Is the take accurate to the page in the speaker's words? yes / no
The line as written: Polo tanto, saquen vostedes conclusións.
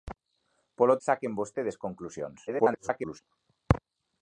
no